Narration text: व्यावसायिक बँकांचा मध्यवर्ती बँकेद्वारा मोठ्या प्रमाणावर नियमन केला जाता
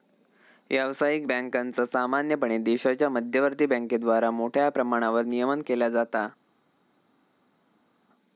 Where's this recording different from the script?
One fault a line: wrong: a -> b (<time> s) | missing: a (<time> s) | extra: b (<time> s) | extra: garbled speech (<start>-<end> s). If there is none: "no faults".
extra: सामान्यपणे देशाच्या (1.8 s)